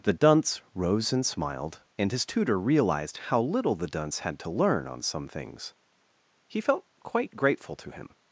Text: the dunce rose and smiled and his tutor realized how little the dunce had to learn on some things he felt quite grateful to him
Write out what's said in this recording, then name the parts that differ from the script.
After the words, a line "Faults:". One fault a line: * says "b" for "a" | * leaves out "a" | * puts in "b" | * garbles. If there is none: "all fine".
the dunce rose and smiled and his tutor realized how little the dunce had to learn on some things he felt quite grateful to him
Faults:
all fine